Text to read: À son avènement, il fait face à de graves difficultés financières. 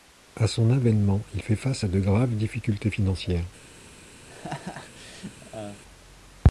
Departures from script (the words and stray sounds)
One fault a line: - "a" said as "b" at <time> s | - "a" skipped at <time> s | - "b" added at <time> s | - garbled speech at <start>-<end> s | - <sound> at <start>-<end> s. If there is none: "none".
- laugh at 4.3-5.8 s